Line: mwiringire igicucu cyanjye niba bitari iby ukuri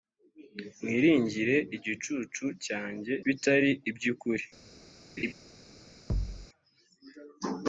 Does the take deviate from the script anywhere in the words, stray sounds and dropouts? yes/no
yes